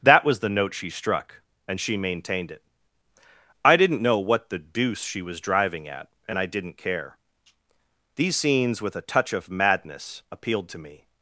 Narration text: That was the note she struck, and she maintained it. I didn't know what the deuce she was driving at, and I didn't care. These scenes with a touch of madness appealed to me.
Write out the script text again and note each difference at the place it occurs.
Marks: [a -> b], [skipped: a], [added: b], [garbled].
That was the note she struck, and she maintained it. I didn't know what the deuce she was driving at, and I didn't care. These scenes with a touch of madness appealed to me.